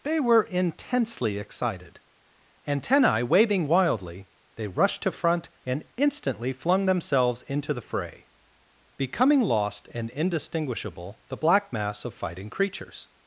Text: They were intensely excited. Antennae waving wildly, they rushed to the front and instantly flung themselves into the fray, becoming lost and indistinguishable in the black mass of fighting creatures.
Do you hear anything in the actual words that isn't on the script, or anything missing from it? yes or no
yes